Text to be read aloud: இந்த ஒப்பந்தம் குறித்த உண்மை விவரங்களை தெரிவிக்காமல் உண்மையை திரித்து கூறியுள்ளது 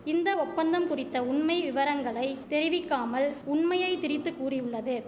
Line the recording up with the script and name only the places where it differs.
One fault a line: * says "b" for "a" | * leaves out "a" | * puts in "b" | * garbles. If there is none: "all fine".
all fine